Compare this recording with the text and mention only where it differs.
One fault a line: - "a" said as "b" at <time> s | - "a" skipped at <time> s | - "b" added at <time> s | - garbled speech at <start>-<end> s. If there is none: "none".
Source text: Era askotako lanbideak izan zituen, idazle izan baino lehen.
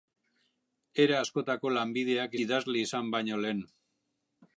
- "izan zituen" skipped at 2.4 s